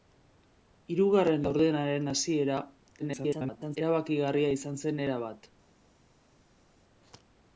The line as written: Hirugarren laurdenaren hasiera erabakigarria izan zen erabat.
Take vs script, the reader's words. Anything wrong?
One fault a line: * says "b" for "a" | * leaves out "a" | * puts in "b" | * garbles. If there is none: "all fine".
* garbles